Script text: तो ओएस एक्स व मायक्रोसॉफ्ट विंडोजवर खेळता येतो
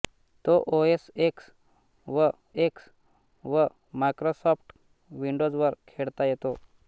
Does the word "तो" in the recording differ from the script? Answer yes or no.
no